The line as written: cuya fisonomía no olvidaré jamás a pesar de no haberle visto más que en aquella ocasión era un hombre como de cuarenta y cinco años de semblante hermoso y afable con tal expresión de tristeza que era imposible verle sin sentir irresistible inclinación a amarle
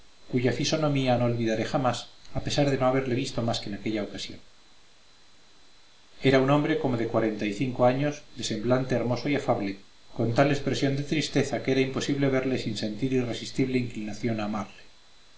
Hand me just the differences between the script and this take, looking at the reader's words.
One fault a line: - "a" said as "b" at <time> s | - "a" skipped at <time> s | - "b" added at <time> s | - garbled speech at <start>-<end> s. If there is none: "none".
none